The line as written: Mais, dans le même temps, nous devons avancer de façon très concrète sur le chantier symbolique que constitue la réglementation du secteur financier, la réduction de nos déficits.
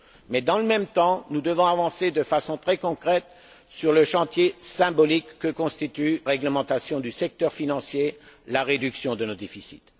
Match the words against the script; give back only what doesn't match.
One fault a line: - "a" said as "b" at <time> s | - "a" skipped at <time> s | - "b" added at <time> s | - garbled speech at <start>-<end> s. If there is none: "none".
- "la" skipped at 6.2 s